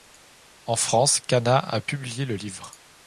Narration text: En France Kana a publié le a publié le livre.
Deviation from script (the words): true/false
true